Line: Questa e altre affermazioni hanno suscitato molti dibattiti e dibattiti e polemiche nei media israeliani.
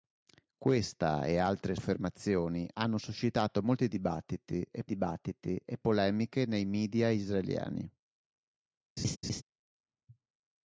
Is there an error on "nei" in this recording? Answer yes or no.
no